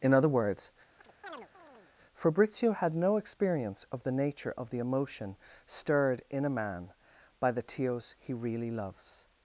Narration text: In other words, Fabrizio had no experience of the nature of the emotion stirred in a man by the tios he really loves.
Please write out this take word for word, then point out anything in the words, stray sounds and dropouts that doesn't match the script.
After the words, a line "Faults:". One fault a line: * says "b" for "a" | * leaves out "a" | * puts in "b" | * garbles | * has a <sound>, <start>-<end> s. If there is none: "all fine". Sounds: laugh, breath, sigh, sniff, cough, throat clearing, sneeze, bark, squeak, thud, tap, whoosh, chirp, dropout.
In other words, Fabrizio had no experience of the nature of the emotion stirred in a man by the tios he really loves.
Faults:
* has a chirp, 1.0-1.9 s